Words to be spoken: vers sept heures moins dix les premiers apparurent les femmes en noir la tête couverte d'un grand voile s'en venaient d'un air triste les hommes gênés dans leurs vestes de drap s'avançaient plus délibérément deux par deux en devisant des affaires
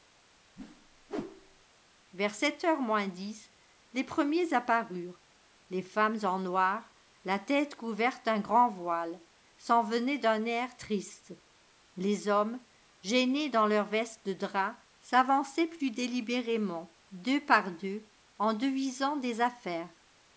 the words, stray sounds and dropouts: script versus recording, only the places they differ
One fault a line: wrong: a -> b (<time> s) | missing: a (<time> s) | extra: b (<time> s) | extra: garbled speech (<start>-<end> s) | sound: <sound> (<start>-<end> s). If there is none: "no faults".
sound: whoosh (0.6-1.6 s)